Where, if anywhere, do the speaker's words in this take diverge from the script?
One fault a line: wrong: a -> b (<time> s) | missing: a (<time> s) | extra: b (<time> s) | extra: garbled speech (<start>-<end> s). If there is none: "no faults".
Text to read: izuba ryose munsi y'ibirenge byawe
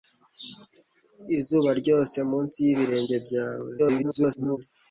extra: garbled speech (3.8-4.6 s)